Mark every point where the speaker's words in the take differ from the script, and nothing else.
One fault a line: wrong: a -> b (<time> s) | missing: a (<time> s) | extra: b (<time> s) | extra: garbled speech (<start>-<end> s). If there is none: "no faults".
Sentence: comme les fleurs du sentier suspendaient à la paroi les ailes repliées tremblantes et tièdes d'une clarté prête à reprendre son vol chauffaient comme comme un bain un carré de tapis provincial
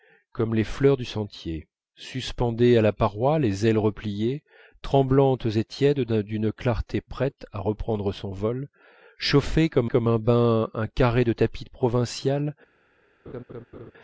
no faults